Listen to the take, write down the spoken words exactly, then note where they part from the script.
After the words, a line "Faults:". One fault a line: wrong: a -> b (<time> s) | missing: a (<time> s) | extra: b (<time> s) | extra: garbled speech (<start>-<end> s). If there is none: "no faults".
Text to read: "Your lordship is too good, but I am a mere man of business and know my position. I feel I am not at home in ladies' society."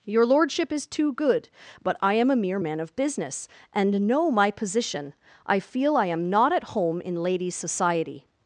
"Your lordship is too good, but I am a mere man of business and know my position. I feel I am not at home in ladies' society."
Faults:
no faults